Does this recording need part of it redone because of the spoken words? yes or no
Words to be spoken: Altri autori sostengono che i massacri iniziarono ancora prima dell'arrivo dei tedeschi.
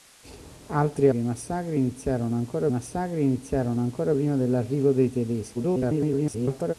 yes